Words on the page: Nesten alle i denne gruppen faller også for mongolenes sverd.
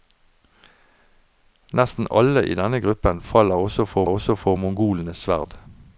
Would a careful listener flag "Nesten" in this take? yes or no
no